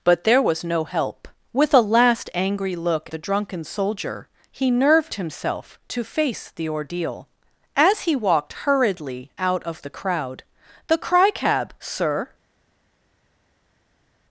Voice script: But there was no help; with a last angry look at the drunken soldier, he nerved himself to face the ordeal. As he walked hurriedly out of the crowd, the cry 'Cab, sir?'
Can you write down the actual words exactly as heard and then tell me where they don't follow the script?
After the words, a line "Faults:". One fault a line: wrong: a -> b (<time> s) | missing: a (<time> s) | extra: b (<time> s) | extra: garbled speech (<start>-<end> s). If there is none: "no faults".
But there was no help; with a last angry look the drunken soldier, he nerved himself to face the ordeal. As he walked hurriedly out of the crowd, the cry 'Cab, sir?'
Faults:
missing: at (3.1 s)